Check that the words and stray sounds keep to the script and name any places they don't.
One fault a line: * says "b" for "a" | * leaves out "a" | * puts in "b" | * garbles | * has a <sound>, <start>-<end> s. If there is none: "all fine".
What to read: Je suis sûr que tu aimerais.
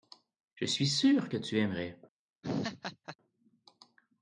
* has a laugh, 2.4-3.2 s